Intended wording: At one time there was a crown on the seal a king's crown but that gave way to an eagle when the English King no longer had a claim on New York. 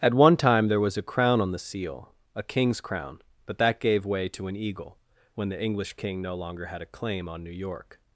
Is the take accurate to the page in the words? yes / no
yes